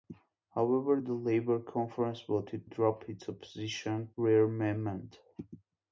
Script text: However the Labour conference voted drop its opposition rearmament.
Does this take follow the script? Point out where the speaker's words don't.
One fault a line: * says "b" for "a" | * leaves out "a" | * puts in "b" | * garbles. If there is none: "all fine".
all fine